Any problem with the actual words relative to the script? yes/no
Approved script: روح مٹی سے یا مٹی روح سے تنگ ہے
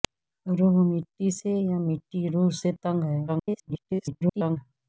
yes